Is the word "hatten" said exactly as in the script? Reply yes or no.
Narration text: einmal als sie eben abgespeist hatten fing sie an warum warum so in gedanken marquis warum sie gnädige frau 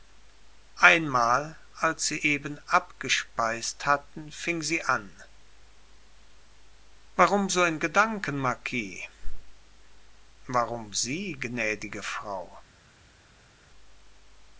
yes